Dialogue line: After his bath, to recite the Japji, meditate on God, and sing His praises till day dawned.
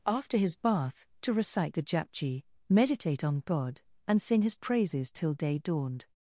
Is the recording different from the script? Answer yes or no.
no